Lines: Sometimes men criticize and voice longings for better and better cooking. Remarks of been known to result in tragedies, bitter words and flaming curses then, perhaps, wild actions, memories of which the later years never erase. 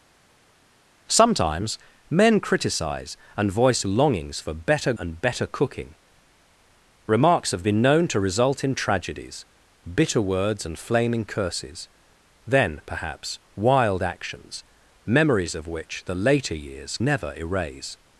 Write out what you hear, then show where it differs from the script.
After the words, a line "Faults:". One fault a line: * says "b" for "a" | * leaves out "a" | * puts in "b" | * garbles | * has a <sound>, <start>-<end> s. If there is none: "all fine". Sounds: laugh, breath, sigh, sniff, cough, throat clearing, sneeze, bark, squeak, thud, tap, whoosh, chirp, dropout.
Sometimes men criticize and voice longings for better and better cooking. Remarks of been known to result in tragedies, bitter words and flaming curses then, perhaps, wild actions, memories of which the later years never erase.
Faults:
all fine